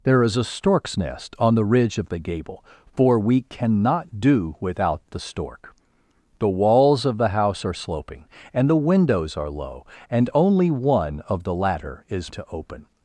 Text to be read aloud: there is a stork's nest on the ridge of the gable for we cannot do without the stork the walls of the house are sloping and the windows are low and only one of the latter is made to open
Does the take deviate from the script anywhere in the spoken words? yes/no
yes